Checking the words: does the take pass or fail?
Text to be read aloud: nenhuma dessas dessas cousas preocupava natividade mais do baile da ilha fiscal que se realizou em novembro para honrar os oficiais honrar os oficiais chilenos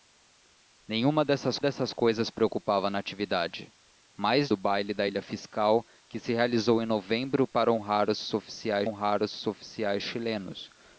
pass